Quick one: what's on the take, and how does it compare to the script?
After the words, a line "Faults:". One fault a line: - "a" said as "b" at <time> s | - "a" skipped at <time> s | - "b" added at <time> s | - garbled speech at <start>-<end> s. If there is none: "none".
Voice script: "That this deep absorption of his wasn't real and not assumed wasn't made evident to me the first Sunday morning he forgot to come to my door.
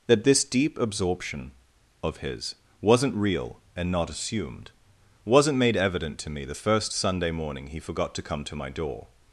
"That this deep absorption of his wasn't real and not assumed wasn't made evident to me the first Sunday morning he forgot to come to my door.
Faults:
none